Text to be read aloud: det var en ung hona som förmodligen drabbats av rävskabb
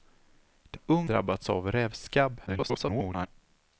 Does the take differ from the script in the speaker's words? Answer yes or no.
yes